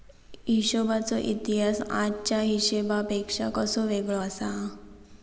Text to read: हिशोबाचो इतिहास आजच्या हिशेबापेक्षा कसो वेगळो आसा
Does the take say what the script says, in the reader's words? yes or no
yes